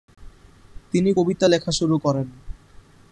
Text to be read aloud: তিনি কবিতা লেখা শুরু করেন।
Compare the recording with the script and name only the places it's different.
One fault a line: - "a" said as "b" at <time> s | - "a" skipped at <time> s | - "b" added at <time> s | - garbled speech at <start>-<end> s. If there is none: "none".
none